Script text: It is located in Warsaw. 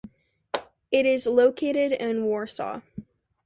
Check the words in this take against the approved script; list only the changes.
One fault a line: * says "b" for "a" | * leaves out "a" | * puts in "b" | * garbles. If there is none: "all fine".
all fine